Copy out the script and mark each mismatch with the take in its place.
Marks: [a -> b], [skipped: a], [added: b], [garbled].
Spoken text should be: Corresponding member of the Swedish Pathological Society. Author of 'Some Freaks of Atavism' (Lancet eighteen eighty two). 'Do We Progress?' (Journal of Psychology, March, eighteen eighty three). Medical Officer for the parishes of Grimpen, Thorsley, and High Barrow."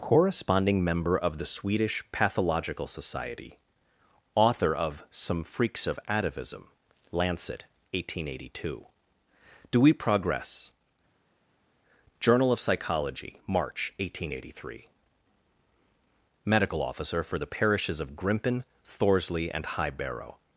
Corresponding member of the Swedish Pathological Society. Author of 'Some Freaks of Atavism' (Lancet eighteen eighty two). 'Do We Progress?' (Journal of Psychology, March, eighteen eighty three). Medical Officer for the parishes of Grimpen, Thorsley, and High Barrow."